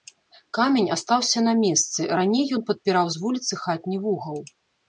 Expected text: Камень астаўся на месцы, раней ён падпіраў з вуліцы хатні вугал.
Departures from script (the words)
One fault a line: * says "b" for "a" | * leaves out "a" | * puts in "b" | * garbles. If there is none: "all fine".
all fine